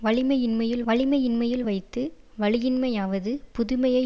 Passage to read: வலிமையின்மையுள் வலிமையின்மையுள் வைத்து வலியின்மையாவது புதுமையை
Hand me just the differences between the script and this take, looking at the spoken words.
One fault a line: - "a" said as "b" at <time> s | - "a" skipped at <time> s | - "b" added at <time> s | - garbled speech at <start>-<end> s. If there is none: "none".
none